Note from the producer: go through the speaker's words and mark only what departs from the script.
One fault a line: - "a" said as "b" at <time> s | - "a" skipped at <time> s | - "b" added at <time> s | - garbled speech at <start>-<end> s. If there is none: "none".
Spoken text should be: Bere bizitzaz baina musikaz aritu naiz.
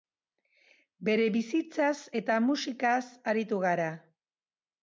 - "baina" said as "eta" at 2.2 s
- "naiz" said as "gara" at 3.7 s